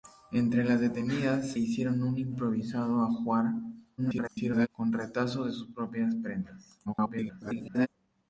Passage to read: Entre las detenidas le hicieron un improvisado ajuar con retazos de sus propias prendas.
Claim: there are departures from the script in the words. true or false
true